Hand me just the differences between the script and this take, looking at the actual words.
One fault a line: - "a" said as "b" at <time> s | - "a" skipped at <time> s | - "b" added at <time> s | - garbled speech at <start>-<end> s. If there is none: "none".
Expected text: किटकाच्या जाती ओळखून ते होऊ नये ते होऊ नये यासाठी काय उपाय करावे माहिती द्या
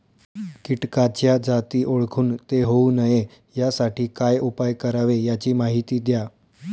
- "ते होऊ नये" skipped at 3.2 s
- "याची" added at 5.2 s